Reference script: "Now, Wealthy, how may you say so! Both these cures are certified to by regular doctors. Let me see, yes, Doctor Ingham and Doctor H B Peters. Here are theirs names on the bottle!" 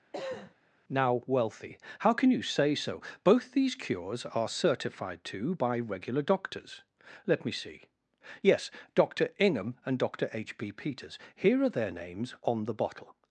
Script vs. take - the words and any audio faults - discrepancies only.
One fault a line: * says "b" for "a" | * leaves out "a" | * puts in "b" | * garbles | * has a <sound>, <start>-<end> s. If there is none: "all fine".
* has a cough, 0.1-0.5 s
* says "can" for "may"
* says "their" for "theirs"